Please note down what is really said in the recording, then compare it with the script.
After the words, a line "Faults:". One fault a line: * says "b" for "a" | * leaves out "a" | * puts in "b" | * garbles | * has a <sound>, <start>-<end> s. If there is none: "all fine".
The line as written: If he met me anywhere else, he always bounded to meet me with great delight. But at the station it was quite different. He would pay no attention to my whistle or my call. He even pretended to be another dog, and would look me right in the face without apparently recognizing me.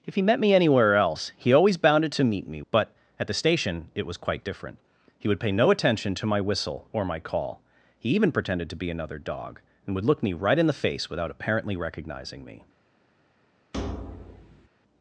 If he met me anywhere else, he always bounded to meet me. But at the station it was quite different. He would pay no attention to my whistle or my call. He even pretended to be another dog, and would look me right in the face without apparently recognizing me.
Faults:
* leaves out "with great delight"
* has a thud, 13.7-14.7 s